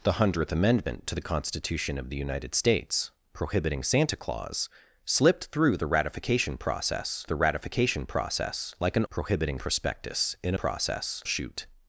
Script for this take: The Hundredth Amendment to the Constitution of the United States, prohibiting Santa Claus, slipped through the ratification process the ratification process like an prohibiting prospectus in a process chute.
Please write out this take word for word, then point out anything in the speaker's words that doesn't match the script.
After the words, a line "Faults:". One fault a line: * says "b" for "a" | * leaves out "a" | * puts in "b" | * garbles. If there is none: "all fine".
The Hundredth Amendment to the Constitution of the United States, prohibiting Santa Claus, slipped through the ratification process the ratification process like an prohibiting prospectus in a process chute.
Faults:
all fine